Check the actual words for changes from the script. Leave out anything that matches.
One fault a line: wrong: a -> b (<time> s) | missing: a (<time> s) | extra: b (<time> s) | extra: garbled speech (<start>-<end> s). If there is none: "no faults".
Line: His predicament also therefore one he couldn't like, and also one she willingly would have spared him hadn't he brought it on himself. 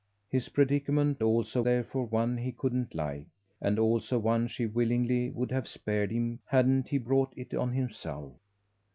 no faults